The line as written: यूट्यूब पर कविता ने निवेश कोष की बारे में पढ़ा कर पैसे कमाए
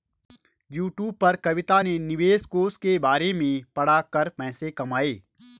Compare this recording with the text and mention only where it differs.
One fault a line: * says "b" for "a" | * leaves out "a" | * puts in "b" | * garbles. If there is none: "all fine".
* says "के" for "की"